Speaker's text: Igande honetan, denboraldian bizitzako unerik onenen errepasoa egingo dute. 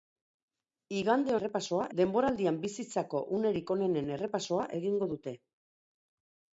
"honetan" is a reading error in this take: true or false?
true